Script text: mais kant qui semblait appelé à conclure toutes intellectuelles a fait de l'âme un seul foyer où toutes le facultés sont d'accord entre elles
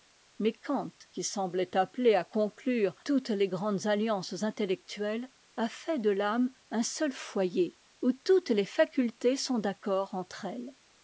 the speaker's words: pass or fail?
fail